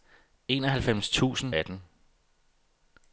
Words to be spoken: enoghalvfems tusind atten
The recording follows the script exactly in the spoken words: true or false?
true